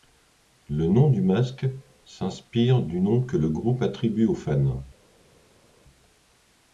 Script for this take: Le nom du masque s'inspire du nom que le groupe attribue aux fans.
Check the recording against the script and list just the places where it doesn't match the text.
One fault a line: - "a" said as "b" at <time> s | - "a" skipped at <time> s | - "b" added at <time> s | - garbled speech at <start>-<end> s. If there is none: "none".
none